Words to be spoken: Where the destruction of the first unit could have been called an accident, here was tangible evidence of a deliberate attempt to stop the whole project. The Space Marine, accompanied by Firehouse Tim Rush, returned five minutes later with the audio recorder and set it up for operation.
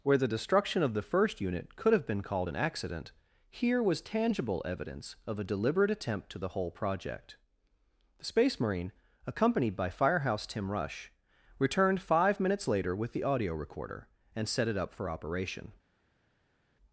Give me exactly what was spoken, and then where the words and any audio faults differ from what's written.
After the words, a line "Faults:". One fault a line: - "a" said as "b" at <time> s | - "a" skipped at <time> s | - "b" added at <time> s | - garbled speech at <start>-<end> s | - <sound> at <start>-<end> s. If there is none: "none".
Where the destruction of the first unit could have been called an accident, here was tangible evidence of a deliberate attempt to the whole project. The Space Marine, accompanied by Firehouse Tim Rush, returned five minutes later with the audio recorder and set it up for operation.
Faults:
- "stop" skipped at 6.4 s